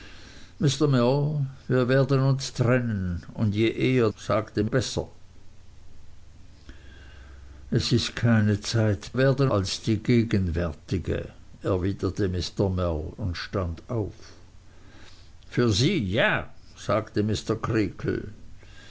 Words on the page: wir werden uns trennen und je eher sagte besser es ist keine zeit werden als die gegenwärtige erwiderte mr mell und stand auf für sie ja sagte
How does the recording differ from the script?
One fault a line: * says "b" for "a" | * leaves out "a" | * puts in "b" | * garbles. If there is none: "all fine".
all fine